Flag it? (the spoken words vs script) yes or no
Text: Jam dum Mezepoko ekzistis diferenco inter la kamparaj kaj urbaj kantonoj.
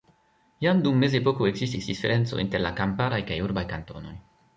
no